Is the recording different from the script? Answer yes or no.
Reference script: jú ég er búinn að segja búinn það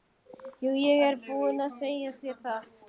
yes